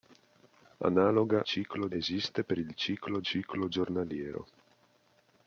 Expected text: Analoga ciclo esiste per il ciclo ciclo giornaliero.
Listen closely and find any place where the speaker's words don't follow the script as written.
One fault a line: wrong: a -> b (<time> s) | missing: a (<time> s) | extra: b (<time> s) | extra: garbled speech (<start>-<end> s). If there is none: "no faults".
no faults